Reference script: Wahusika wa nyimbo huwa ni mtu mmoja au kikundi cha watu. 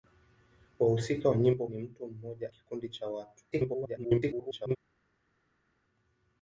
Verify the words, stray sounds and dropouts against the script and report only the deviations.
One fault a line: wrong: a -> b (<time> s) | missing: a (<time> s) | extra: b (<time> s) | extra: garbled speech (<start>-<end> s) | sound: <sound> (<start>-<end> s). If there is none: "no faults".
missing: huwa (1.7 s)
missing: au (2.5 s)
extra: garbled speech (3.5-4.8 s)